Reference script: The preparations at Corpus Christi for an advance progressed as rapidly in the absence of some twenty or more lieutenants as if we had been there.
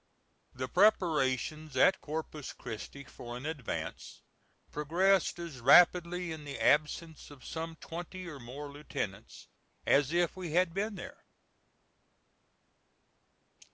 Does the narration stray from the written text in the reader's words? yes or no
no